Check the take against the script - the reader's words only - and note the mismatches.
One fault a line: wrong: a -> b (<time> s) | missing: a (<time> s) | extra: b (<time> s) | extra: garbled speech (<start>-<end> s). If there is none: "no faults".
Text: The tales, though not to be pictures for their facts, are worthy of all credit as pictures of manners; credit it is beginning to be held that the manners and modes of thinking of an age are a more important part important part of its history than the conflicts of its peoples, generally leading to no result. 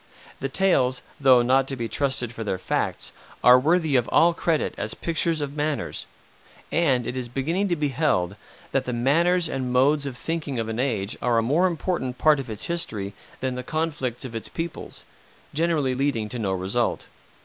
wrong: pictures -> trusted (1.9 s)
wrong: credit -> and (6.7 s)
missing: important part (12.4 s)